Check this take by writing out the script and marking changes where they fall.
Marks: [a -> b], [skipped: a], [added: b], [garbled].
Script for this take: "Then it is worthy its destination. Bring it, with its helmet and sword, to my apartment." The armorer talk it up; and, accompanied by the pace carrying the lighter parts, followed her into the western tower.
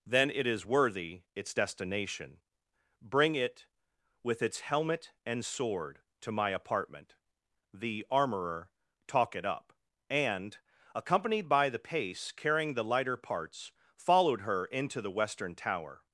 "Then it is worthy its destination. Bring it, with its helmet and sword, to my apartment." The armorer talk it up; and, accompanied by the pace carrying the lighter parts, followed her into the western tower.